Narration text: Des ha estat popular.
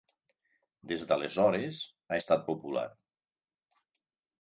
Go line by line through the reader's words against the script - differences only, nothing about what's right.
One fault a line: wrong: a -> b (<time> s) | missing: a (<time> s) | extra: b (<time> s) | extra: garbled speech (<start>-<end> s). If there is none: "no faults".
extra: d'aleshores (1.1 s)